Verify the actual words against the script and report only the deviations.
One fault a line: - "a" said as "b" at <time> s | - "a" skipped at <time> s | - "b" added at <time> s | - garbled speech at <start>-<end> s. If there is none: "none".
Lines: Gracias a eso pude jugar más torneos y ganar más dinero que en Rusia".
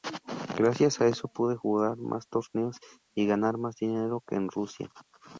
none